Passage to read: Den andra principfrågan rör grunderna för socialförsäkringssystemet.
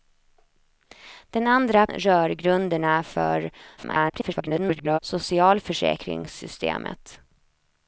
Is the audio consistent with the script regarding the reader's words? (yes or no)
no